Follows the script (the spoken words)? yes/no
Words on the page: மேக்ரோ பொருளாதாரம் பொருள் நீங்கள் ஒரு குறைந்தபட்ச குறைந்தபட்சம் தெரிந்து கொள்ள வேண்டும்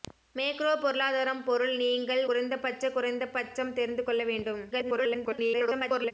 no